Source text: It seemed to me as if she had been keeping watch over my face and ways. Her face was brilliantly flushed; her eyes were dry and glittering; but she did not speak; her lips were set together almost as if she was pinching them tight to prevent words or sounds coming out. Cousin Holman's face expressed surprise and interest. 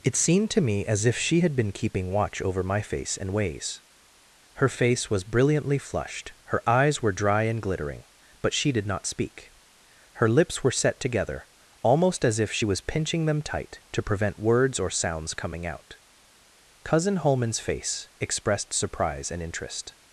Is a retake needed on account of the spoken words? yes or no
no